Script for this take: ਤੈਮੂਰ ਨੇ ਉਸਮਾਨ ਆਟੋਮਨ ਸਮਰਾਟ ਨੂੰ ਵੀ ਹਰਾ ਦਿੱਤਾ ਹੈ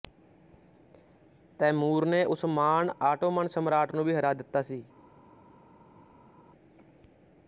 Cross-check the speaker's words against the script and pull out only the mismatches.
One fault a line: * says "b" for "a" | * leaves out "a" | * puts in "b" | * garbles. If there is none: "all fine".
* says "ਸੀ" for "ਹੈ"